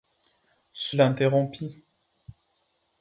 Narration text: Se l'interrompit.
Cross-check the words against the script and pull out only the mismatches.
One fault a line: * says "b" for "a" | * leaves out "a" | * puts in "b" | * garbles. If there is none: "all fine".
all fine